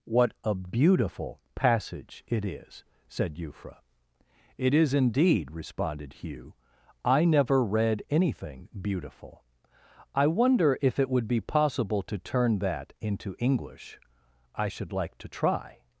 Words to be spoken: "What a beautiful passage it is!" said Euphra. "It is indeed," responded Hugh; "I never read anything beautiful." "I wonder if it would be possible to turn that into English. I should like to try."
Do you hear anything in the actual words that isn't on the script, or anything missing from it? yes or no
no